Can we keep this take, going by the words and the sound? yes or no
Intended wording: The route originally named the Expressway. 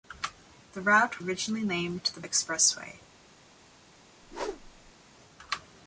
no